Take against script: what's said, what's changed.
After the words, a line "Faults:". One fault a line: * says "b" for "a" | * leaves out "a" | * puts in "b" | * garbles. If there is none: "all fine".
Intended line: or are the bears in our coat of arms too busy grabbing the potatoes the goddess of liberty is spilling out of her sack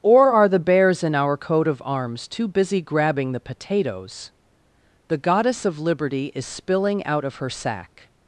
or are the bears in our coat of arms too busy grabbing the potatoes the goddess of liberty is spilling out of her sack
Faults:
all fine